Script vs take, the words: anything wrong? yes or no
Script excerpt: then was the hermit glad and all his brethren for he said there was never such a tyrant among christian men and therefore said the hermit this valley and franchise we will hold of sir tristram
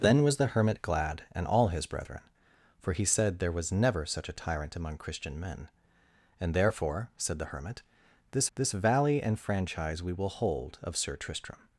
yes